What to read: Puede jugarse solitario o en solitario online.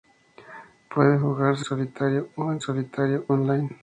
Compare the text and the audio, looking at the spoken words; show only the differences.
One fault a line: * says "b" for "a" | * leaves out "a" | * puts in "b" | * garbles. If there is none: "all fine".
all fine